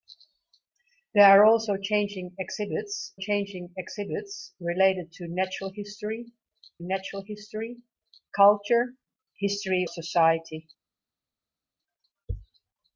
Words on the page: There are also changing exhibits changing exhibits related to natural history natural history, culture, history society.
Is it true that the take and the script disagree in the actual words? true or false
false